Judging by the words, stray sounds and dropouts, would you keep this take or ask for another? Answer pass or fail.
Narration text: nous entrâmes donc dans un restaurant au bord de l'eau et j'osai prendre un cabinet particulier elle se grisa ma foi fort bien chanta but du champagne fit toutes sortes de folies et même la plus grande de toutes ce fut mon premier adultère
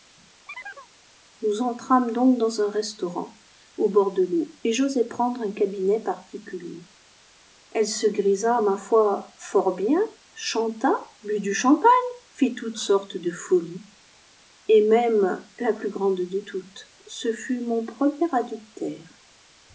fail